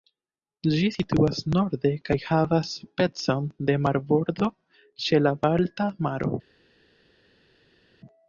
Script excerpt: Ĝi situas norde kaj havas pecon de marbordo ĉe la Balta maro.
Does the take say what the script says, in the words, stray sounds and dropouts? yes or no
yes